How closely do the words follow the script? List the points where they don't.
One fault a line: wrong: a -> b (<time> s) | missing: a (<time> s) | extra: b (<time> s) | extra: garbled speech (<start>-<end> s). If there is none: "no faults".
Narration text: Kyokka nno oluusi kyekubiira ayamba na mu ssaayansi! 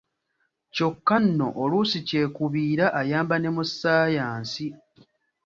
wrong: na -> ne (3.4 s)